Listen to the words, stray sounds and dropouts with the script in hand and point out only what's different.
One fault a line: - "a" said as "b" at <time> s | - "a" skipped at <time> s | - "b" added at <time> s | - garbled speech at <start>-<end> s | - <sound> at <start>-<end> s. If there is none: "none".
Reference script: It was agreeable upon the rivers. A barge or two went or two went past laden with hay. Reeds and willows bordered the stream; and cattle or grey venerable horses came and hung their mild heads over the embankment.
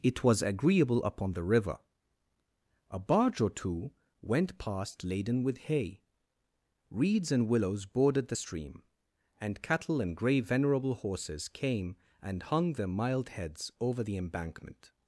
- "rivers" said as "river" at 1.4 s
- "or two went" skipped at 4.6 s
- "or" said as "and" at 10.0 s